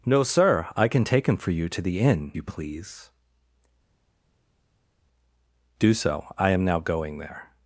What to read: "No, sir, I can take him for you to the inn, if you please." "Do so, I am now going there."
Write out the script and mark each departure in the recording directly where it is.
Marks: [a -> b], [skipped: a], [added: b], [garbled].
"No, sir, I can take him for you to the inn, [skipped: if] you please." "Do so, I am now going there."